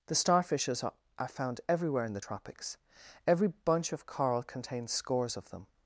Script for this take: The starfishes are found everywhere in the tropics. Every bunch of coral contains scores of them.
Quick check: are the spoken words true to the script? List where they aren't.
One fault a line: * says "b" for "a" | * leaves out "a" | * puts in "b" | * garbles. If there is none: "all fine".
* puts in "are"